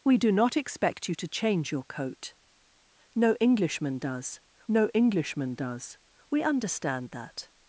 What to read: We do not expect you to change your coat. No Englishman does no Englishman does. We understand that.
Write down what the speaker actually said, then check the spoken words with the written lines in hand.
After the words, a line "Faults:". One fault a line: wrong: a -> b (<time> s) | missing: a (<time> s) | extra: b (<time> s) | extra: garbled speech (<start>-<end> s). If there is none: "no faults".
We do not expect you to change your coat. No Englishman does no Englishman does. We understand that.
Faults:
no faults